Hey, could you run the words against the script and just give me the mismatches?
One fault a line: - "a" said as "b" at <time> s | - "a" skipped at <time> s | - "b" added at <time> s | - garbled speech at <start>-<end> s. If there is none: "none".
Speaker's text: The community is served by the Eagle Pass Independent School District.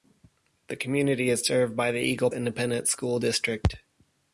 - "Pass" skipped at 2.3 s